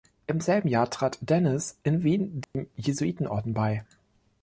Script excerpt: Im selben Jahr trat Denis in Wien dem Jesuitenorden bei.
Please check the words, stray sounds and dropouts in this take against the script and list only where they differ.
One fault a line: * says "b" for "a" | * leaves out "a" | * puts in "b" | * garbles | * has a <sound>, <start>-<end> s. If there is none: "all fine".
* has a dropout, 2.4-2.5 s